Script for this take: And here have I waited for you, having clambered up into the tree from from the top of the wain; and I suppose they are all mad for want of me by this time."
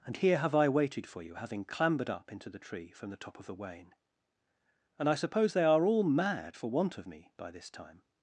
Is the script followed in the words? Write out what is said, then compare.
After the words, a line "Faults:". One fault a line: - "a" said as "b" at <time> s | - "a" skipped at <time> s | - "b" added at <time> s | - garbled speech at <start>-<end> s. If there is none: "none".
And here have I waited for you, having clambered up into the tree from the top of the wain; and I suppose they are all mad for want of me by this time."
Faults:
- "from" skipped at 3.1 s